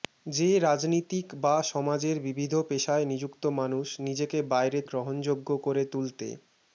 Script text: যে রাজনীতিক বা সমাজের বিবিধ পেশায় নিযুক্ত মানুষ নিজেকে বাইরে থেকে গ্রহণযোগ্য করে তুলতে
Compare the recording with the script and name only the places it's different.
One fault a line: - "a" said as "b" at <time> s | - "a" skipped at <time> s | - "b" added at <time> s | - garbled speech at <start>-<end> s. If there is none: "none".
- "থেকে" skipped at 4.8 s